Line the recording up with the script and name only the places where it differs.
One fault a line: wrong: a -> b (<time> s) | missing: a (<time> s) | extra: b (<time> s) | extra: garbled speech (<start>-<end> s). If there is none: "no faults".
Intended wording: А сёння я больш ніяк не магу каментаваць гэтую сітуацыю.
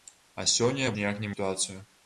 missing: больш (0.9 s)
missing: магу каментаваць гэтую (1.3 s)